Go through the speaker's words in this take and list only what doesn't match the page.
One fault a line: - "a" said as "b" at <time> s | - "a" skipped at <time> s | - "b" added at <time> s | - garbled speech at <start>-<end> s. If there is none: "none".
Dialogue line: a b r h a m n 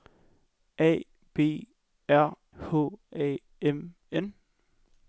none